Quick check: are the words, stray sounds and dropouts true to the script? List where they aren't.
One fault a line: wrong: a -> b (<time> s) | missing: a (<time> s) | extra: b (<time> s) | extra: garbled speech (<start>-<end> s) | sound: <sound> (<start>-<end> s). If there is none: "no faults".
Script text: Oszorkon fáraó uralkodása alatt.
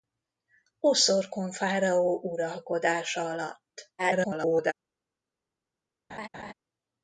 extra: garbled speech (4.0-4.7 s)
sound: laugh (6.1-6.5 s)